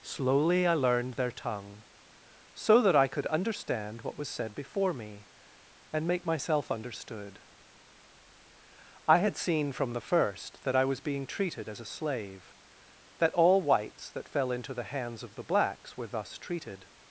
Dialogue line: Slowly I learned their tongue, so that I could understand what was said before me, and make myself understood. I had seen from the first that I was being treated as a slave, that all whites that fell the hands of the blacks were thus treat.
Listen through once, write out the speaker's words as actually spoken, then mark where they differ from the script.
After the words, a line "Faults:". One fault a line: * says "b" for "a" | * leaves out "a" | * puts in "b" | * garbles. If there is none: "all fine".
Slowly I learned their tongue, so that I could understand what was said before me, and make myself understood. I had seen from the first that I was being treated as a slave, that all whites that fell into the hands of the blacks were thus treated.
Faults:
* puts in "into"
* says "treated" for "treat"